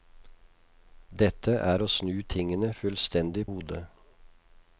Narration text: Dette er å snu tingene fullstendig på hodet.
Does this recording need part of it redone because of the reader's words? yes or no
yes